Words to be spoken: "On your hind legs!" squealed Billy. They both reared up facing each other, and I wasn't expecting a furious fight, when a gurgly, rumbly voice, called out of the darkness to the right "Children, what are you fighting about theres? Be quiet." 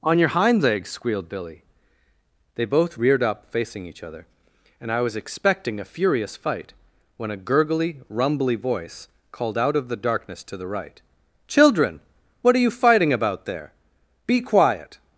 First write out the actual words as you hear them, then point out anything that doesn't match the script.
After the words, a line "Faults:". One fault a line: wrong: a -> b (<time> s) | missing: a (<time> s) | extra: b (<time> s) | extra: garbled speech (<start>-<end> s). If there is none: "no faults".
"On your hind legs!" squealed Billy. They both reared up facing each other, and I was expecting a furious fight, when a gurgly, rumbly voice, called out of the darkness to the right "Children, what are you fighting about there? Be quiet."
Faults:
wrong: wasn't -> was (5.0 s)
wrong: theres -> there (13.4 s)